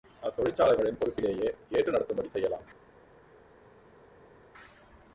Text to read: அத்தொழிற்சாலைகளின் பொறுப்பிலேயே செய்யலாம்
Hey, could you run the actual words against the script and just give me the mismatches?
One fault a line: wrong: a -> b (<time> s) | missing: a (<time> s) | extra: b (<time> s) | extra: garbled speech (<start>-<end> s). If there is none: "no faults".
extra: ஏற்று நடத்தும்படி (1.7 s)